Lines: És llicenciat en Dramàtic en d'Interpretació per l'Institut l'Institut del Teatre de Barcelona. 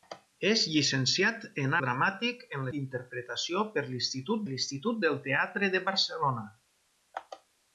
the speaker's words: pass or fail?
pass